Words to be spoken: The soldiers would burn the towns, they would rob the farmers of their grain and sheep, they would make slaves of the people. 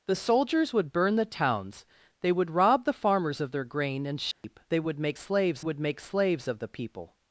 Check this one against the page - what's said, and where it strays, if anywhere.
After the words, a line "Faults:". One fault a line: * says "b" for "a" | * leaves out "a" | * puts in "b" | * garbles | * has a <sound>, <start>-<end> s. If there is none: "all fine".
The soldiers would burn the towns, they would rob the farmers of their grain and sheep, they would make slaves would make slaves of the people.
Faults:
* has a dropout, 4.3-4.4 s
* puts in "would make slaves"